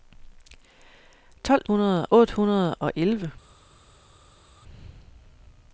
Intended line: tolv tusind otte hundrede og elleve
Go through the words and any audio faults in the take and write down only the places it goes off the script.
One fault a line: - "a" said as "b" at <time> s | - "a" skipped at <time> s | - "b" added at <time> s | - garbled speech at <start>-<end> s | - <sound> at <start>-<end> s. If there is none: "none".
- "tusind" said as "hundrede" at 1.7 s